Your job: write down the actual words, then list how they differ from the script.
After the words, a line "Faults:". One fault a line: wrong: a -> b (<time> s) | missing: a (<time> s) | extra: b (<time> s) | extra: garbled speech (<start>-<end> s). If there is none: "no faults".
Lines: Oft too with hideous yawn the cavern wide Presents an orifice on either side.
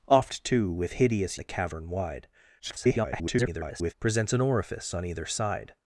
Oft too with hideous the cavern wide [garbled] Presents an orifice on either side.
Faults:
missing: yawn (1.4 s)
extra: garbled speech (2.6-3.9 s)